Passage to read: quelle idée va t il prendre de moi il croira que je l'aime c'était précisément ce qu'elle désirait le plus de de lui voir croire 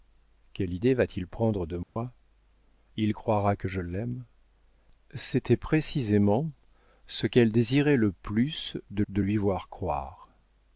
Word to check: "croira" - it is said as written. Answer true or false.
true